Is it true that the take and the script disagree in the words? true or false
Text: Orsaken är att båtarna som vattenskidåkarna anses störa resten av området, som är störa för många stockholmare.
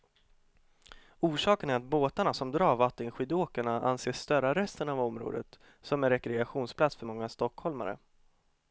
true